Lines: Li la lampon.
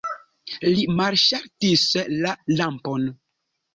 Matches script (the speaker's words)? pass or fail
fail